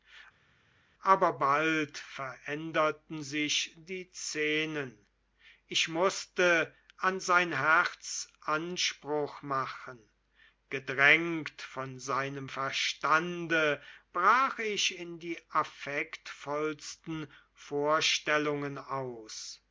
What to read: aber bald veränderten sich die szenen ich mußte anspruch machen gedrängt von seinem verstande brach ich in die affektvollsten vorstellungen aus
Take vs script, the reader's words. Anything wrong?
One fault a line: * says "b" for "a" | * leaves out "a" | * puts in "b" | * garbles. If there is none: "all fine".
* puts in "an sein herz"